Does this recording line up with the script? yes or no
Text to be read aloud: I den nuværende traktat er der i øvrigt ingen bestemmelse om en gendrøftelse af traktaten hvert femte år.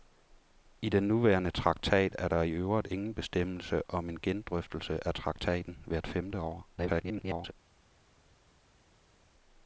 no